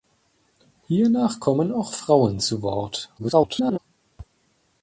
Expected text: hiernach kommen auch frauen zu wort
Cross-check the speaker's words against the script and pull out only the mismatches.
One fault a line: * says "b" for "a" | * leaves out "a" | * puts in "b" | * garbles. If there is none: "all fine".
* garbles